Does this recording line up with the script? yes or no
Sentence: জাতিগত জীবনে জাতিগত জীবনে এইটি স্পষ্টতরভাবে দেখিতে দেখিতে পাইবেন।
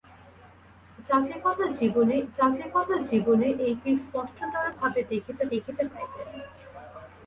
yes